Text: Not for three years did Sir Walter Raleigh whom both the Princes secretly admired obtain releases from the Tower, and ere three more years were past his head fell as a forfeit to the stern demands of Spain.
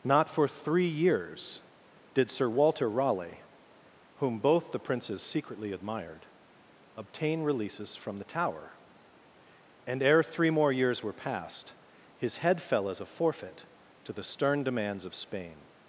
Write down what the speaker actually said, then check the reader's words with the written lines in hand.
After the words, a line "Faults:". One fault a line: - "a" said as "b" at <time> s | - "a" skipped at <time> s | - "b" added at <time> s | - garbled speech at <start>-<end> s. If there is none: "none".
Not for three years did Sir Walter Raleigh whom both the Princes secretly admired obtain releases from the Tower, and ere three more years were past his head fell as a forfeit to the stern demands of Spain.
Faults:
none